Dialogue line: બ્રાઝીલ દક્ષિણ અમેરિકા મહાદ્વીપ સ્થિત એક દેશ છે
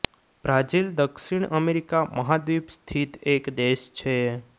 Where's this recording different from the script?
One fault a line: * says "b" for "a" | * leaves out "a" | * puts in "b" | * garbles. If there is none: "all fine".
all fine